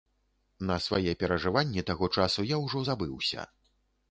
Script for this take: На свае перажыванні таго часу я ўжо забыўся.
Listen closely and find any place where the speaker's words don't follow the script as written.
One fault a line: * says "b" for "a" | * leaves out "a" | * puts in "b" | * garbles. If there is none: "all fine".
all fine